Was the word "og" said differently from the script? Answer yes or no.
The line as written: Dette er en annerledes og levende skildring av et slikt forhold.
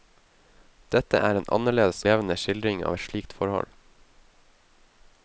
yes